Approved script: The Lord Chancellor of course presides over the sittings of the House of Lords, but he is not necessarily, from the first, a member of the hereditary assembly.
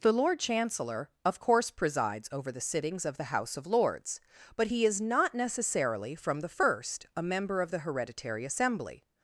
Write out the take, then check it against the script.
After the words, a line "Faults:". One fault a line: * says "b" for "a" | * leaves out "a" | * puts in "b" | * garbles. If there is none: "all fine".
The Lord Chancellor of course presides over the sittings of the House of Lords, but he is not necessarily, from the first, a member of the hereditary assembly.
Faults:
all fine